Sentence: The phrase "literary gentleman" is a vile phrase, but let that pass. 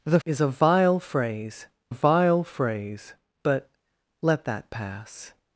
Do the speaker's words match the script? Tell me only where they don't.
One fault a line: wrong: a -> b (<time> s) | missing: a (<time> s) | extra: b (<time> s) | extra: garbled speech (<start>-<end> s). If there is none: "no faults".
wrong: phrase literary gentleman is a -> is a vile phrase (0.2 s)